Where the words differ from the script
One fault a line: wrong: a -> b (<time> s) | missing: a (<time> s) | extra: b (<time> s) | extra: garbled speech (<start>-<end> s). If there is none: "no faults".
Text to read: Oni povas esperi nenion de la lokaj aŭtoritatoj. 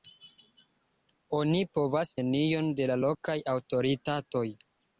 missing: esperi (2.1 s)